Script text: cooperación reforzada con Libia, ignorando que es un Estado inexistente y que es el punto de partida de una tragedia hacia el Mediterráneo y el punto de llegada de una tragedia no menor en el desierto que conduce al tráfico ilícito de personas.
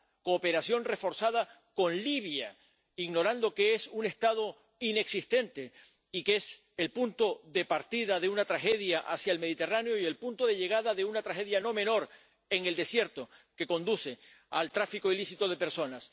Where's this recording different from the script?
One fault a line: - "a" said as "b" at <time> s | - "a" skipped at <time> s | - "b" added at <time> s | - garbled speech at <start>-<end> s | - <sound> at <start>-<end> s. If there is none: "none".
none